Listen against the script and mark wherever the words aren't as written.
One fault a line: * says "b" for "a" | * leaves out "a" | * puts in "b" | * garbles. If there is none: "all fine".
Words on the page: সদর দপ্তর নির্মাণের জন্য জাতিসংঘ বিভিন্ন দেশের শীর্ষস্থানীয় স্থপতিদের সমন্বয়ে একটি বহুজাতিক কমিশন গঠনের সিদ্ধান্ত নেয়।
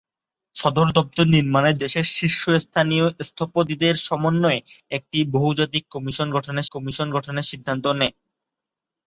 * leaves out "জন্য জাতিসংঘ বিভিন্ন"
* puts in "কমিশন গঠনের"